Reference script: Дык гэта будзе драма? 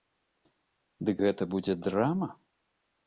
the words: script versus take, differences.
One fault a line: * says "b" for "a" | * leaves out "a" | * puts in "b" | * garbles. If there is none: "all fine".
all fine